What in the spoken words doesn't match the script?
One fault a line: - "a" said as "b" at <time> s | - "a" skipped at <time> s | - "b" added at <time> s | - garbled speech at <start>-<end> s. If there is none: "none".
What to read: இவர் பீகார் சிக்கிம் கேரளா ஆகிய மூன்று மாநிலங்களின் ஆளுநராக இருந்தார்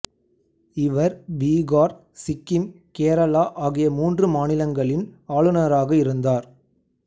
none